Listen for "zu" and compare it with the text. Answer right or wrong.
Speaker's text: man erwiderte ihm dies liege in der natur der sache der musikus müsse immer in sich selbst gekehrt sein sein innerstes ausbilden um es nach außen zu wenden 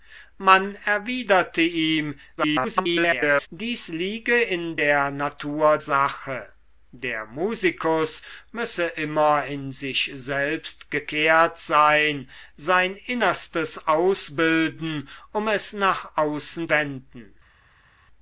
wrong